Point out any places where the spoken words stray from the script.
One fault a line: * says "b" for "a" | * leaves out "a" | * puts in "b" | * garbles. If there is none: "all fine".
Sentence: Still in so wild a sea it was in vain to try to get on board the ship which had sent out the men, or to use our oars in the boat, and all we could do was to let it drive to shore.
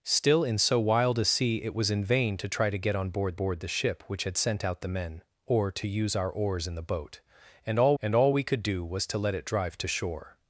* puts in "board"
* puts in "and all"